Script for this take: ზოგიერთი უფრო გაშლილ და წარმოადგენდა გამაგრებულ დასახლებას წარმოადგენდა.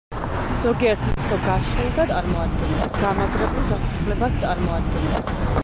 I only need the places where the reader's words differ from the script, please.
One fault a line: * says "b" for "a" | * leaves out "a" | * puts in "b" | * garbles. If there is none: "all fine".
all fine